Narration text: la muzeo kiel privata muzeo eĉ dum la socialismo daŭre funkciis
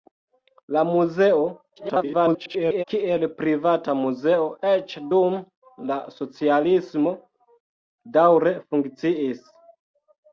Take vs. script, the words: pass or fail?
fail